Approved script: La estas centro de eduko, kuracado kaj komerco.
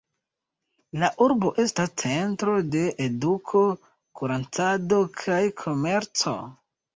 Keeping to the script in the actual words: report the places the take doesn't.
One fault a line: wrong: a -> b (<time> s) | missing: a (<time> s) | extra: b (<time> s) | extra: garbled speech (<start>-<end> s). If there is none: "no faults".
extra: urbo (1.2 s)